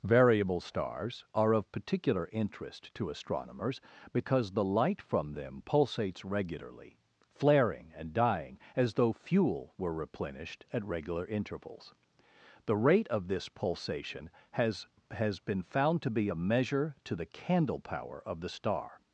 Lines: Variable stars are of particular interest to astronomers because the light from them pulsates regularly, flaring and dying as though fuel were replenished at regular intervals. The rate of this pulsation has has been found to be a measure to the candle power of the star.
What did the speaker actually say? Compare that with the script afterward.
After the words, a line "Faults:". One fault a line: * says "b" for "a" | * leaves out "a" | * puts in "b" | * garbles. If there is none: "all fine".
Variable stars are of particular interest to astronomers because the light from them pulsates regularly, flaring and dying as though fuel were replenished at regular intervals. The rate of this pulsation has has been found to be a measure to the candle power of the star.
Faults:
all fine